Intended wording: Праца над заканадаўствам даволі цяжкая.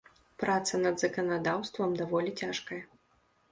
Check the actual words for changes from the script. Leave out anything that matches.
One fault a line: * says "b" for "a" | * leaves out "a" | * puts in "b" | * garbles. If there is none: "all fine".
all fine